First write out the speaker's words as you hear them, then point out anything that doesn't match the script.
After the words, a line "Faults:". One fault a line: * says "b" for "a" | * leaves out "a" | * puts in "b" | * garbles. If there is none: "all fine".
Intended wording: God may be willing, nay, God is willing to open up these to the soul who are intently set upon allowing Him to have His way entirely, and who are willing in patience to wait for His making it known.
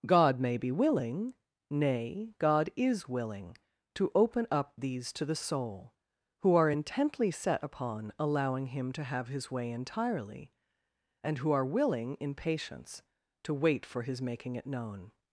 God may be willing, nay, God is willing to open up these to the soul who are intently set upon allowing Him to have His way entirely, and who are willing in patience to wait for His making it known.
Faults:
all fine